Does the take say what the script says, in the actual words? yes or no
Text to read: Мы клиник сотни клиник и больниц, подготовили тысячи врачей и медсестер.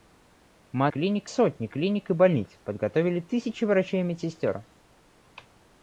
yes